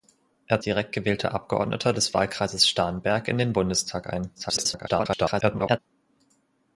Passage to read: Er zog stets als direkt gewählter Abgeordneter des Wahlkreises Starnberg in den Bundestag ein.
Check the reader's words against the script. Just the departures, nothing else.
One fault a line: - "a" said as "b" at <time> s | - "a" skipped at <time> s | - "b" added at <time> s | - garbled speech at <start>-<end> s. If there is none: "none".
- "zog stets als" skipped at 0.6 s
- garbled speech at 4.4-5.8 s